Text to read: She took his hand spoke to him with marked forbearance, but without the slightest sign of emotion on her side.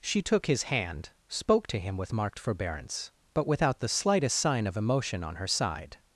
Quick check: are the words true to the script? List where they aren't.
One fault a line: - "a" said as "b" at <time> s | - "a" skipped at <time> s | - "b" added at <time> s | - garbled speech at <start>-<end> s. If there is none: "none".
none